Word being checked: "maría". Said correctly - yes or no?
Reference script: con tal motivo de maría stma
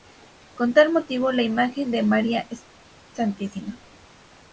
yes